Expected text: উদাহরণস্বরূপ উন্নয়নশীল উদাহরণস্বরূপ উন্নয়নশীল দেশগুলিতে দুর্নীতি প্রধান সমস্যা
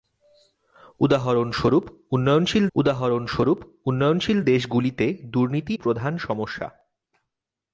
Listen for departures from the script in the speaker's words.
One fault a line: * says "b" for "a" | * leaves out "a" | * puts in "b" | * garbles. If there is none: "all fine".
all fine